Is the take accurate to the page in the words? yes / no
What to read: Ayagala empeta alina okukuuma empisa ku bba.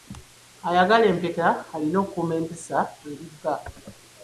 no